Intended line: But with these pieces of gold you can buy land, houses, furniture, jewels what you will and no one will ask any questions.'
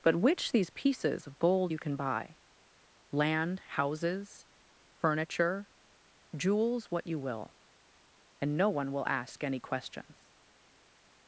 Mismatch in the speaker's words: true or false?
true